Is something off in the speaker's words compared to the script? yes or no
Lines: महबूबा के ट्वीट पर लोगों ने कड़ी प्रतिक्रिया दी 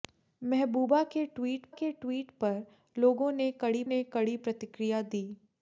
yes